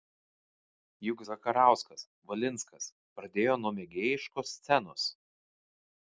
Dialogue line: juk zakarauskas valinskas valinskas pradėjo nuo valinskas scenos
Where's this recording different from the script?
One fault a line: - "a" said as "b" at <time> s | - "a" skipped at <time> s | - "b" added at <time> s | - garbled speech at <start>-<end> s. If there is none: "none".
- "valinskas" skipped at 2.9 s
- "valinskas" said as "mėgėjiškos" at 3.8 s